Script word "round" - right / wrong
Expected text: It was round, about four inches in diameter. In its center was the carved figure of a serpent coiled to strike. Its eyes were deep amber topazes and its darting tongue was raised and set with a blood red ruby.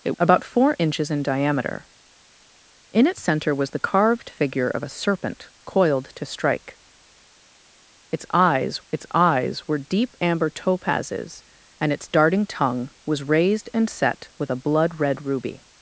wrong